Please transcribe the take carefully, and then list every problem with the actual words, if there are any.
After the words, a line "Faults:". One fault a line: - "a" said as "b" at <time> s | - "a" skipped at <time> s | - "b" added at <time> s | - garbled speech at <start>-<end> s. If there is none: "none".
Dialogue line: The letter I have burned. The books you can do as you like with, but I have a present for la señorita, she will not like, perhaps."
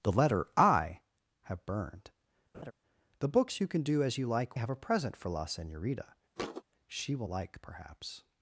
The letter I have burned. The books you can do as you like have a present for la señorita, she will like, perhaps."
Faults:
- "with but I" skipped at 4.6 s
- "not" skipped at 7.3 s